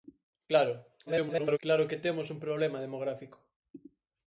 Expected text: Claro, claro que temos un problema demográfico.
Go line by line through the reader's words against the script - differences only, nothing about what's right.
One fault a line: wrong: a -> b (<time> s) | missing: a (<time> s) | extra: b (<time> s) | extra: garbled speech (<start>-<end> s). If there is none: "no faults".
extra: garbled speech (1.1-1.6 s)